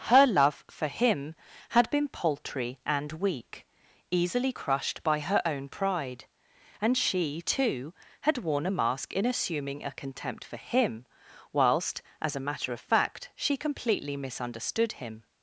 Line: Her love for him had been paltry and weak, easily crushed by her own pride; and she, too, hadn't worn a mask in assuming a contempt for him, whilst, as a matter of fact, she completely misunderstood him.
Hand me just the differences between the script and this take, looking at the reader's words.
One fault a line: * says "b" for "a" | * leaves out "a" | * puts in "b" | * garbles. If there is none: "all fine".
* says "had" for "hadn't"